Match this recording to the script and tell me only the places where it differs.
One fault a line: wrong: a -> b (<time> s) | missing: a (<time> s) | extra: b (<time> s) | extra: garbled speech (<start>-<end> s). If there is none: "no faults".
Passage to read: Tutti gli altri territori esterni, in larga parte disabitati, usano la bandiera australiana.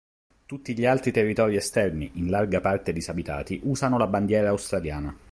no faults